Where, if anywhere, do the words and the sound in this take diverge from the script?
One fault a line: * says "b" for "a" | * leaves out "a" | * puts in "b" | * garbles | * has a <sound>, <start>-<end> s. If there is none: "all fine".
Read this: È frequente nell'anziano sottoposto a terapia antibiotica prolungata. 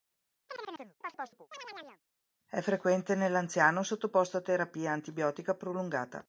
* has a chirp, 0.5-2.0 s